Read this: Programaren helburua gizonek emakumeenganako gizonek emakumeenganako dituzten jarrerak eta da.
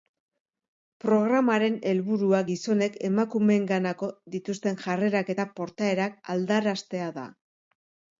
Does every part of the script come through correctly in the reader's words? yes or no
no